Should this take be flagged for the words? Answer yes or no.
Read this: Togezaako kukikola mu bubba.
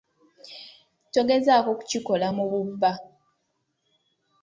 no